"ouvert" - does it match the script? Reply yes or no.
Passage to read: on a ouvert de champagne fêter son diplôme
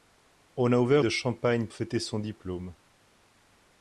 yes